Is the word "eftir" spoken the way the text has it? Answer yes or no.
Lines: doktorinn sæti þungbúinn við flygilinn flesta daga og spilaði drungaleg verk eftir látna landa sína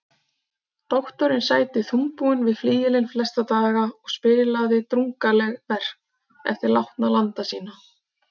yes